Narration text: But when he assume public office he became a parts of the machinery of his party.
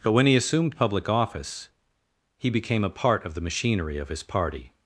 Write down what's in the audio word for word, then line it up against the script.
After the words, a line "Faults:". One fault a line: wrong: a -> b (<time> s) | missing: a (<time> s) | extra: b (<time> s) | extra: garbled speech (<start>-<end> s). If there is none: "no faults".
But when he assumed public office he became a part of the machinery of his party.
Faults:
wrong: assume -> assumed (0.3 s)
wrong: parts -> part (2.9 s)